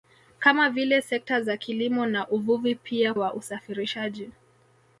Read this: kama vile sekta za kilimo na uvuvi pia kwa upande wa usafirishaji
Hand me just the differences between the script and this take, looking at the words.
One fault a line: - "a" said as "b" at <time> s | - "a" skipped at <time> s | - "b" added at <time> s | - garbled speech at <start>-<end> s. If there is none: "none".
- "kwa upande" skipped at 3.1 s